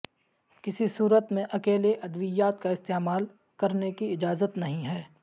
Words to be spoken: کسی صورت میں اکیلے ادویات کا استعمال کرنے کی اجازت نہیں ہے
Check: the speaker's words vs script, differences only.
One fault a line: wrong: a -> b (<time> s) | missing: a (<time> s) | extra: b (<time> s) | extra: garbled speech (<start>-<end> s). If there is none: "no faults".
no faults